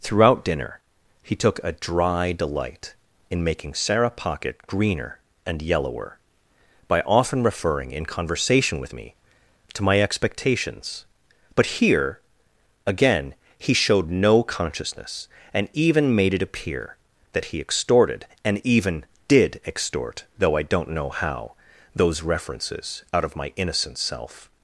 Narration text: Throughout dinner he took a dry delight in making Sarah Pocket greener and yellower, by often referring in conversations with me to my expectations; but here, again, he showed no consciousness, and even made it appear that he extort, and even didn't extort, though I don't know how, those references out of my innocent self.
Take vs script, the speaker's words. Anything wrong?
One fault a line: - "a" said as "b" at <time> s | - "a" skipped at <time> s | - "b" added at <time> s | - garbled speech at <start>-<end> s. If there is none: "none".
- "conversations" said as "conversation" at 8.1 s
- "extort" said as "extorted" at 17.6 s
- "didn't" said as "did" at 19.3 s